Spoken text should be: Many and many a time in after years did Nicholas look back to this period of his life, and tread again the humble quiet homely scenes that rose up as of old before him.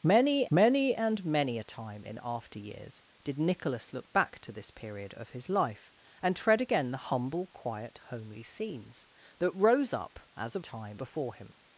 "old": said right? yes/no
no